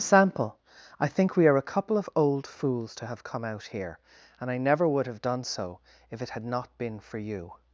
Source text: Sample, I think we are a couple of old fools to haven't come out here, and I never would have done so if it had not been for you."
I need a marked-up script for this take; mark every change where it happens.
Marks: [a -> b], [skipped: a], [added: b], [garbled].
Sample, I think we are a couple of old fools to [haven't -> have] come out here, and I never would have done so if it had not been for you."